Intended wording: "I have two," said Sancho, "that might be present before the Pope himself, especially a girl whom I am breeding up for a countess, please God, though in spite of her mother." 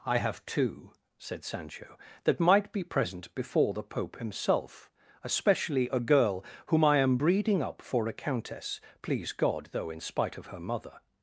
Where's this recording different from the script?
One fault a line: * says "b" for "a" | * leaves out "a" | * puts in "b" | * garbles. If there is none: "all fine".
all fine